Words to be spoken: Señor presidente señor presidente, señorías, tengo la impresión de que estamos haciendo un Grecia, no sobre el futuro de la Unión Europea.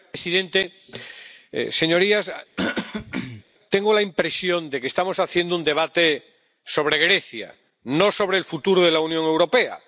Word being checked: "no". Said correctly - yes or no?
yes